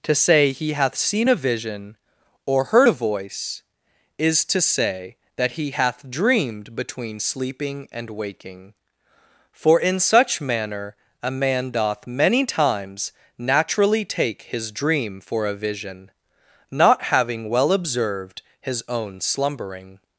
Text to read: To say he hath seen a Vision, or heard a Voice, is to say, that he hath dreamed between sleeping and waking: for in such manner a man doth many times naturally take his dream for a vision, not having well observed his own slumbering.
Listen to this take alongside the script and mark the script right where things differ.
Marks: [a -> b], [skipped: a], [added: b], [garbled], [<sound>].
To say he hath seen a Vision, or heard a Voice, is to say, that he hath dreamed between sleeping and waking: for in such manner a man doth many times naturally take his dream for a vision, not having well observed his own slumbering.